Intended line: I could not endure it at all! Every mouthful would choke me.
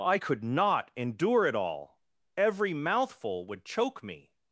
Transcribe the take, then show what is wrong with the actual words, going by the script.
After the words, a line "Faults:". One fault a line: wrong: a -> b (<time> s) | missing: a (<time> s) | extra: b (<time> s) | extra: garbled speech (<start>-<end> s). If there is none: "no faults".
I could not endure it all! Every mouthful would choke me.
Faults:
missing: at (1.5 s)